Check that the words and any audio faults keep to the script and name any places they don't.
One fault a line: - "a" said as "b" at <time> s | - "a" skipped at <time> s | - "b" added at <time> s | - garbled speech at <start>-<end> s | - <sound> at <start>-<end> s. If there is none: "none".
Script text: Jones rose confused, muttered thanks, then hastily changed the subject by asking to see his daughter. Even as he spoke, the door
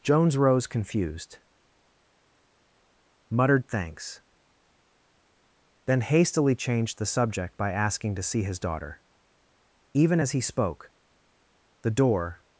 none